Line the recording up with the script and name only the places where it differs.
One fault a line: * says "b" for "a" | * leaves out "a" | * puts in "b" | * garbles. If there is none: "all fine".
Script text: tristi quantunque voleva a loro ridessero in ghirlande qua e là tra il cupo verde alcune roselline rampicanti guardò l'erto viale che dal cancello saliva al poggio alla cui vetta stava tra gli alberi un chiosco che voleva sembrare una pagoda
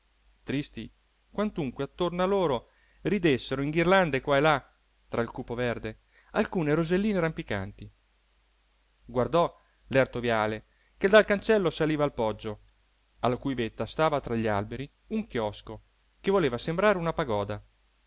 * says "attorno" for "voleva"